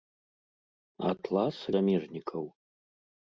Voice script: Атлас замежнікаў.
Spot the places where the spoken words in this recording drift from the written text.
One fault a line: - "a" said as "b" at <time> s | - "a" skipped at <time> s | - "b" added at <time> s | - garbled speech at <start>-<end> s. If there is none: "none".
none